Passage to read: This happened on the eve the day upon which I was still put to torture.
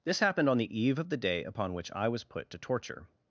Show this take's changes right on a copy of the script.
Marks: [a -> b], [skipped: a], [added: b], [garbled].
This happened on the eve [added: of] the day upon which I was [skipped: still] put to torture.